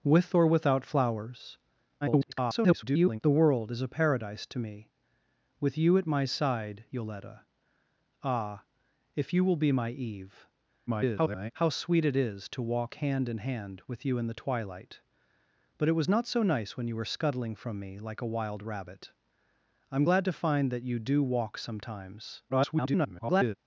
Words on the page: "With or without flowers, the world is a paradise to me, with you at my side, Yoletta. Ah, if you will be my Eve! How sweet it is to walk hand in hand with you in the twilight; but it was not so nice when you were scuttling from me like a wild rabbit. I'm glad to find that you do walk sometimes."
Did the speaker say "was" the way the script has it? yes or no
yes